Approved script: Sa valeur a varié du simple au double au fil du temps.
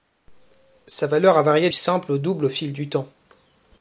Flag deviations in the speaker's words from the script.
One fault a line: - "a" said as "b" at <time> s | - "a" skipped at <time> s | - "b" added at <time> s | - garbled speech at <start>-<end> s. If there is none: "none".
- "du" skipped at 1.7 s